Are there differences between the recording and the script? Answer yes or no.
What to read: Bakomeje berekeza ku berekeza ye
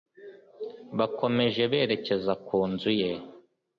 yes